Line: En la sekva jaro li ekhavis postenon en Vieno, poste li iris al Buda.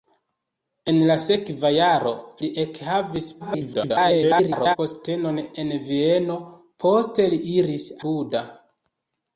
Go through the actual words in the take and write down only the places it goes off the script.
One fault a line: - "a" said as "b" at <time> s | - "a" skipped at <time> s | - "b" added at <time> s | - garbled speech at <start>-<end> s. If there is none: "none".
- garbled speech at 3.4-4.8 s
- "al" skipped at 7.9 s